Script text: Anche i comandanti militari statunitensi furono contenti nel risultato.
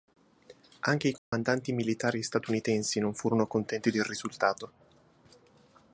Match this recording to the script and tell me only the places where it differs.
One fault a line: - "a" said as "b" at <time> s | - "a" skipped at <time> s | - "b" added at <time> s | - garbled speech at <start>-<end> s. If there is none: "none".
- "non" added at 3.0 s
- "nel" said as "del" at 3.9 s